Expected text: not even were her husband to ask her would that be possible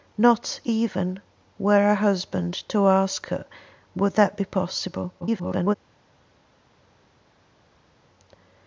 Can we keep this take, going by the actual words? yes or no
no